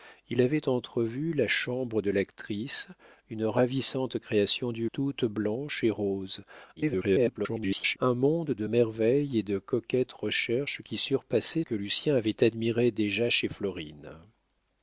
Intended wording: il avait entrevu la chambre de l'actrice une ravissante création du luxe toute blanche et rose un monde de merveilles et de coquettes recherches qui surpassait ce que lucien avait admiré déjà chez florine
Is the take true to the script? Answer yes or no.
no